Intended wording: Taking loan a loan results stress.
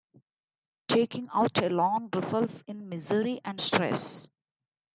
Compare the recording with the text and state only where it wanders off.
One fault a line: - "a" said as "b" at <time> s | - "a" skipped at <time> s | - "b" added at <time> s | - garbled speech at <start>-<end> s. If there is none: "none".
- "loan" said as "out" at 1.3 s
- "in misery and" added at 2.7 s